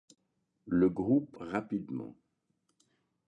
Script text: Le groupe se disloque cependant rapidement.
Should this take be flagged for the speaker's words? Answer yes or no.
yes